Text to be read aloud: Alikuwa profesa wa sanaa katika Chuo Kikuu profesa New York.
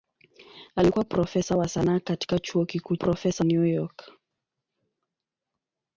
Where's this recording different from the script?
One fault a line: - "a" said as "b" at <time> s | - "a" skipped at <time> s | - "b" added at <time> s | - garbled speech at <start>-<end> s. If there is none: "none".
none